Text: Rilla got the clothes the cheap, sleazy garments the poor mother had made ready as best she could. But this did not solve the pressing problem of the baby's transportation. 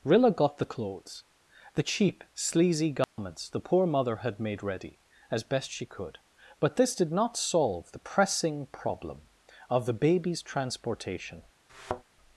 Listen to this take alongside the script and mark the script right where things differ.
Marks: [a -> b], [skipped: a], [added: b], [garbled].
Rilla got the clothes the cheap, sleazy garments the poor mother had made ready as best she could. But this did not solve the pressing problem of the baby's transportation.